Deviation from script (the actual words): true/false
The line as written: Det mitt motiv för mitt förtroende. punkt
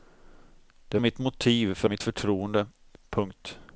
false